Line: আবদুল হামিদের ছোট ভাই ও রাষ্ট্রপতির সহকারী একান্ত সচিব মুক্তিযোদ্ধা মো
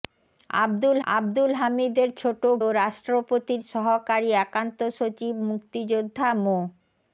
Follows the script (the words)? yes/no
no